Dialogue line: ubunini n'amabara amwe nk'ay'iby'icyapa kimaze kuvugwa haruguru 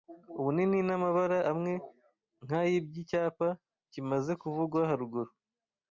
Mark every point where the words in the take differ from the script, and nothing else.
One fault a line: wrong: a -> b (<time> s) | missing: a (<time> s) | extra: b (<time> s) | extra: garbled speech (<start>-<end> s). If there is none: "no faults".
no faults